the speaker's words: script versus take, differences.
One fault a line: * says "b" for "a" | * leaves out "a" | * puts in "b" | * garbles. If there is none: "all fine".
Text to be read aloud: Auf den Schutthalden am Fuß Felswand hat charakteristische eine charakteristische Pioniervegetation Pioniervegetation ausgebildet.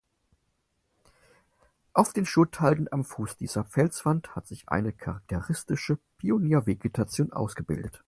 * puts in "dieser"
* says "sich" for "charakteristische"
* leaves out "Pioniervegetation"